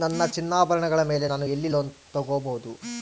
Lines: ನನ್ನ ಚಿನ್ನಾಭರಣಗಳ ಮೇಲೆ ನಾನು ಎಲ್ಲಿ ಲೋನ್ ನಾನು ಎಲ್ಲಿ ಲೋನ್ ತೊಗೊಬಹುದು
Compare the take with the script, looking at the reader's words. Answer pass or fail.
fail